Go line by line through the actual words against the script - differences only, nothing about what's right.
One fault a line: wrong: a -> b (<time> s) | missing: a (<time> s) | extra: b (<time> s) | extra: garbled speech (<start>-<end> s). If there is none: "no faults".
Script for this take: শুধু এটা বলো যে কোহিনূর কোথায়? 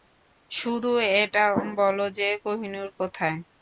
no faults